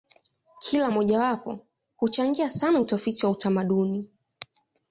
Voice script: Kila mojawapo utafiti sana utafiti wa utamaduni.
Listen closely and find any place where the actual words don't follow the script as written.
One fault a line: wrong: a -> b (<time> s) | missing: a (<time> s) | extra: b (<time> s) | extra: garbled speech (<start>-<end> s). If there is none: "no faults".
wrong: utafiti -> huchangia (2.0 s)